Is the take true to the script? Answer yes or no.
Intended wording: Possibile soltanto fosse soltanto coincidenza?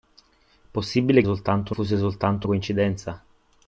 yes